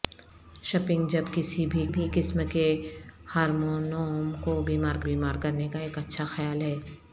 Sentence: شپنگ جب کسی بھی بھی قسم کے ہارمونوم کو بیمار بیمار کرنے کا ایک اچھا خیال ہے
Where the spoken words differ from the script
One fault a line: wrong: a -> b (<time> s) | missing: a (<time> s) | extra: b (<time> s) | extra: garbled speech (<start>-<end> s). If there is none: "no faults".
no faults